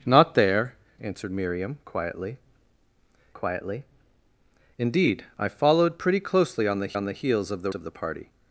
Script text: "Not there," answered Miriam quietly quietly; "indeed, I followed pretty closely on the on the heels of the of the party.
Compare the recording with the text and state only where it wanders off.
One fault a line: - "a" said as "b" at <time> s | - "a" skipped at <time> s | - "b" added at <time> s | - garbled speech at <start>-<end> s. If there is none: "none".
none